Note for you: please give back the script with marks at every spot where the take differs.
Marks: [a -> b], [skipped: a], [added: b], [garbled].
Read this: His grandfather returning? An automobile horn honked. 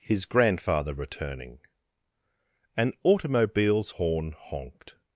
His grandfather returning? An [automobile -> automobiles] horn honked.